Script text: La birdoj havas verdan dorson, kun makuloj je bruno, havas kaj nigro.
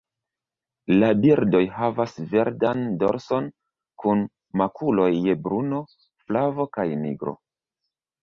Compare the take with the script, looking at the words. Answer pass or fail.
fail